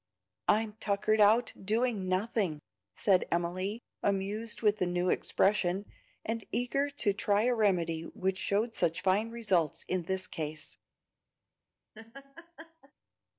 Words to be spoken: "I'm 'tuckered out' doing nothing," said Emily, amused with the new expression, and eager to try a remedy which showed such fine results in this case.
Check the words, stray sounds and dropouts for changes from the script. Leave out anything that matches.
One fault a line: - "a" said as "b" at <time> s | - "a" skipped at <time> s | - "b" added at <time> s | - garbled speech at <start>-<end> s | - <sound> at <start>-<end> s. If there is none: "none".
- laugh at 11.9-12.9 s